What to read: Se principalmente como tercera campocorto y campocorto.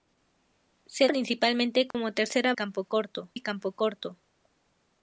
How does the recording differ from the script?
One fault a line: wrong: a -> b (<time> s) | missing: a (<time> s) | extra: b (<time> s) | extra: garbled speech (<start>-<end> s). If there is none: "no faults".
no faults